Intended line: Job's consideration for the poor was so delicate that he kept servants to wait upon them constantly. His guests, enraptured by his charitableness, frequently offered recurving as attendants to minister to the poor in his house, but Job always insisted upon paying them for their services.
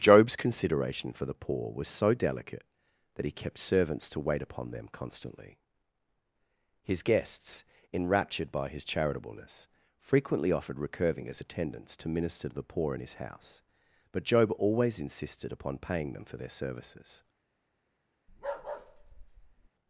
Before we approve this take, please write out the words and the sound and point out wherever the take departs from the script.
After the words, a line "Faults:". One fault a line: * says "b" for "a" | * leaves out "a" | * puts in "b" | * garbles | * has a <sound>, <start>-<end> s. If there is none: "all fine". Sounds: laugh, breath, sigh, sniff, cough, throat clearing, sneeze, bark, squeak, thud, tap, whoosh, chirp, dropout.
Job's consideration for the poor was so delicate that he kept servants to wait upon them constantly. His guests, enraptured by his charitableness, frequently offered recurving as attendants to minister to the poor in his house, but Job always insisted upon paying them for their services.
Faults:
* has a bark, 18.3-19.7 s